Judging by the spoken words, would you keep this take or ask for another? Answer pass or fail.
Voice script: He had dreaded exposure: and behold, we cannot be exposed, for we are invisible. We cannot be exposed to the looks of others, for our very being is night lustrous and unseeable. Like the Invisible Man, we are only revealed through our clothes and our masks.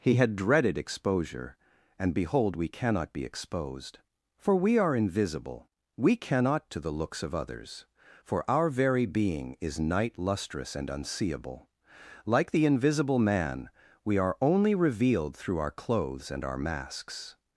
fail